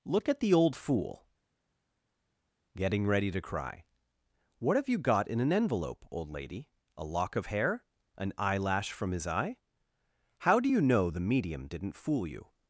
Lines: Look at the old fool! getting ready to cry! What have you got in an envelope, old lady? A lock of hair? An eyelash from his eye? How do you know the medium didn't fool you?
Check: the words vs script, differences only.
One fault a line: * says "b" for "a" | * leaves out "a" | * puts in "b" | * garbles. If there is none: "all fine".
all fine